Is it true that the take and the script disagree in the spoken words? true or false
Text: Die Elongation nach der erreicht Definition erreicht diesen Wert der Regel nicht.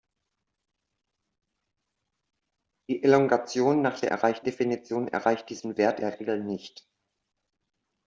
false